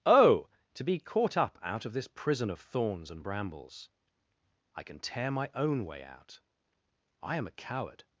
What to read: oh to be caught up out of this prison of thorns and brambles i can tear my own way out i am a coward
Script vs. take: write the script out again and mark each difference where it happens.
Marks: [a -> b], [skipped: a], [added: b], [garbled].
oh to be caught up out of this prison of thorns and brambles i can tear my own way out i am a coward